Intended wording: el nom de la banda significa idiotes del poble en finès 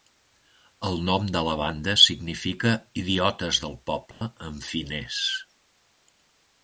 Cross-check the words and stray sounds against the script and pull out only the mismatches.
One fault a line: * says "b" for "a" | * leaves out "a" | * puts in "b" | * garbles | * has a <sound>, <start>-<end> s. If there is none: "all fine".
* has a dropout, 4.1-4.2 s